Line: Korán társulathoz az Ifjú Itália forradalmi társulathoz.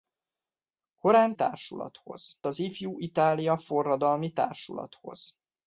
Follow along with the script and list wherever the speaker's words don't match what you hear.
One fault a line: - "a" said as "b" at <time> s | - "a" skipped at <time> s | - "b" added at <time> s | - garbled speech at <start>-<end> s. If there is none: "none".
none